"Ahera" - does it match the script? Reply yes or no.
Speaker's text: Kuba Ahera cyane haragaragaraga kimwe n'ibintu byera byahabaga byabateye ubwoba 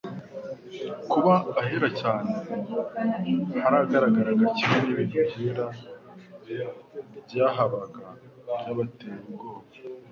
yes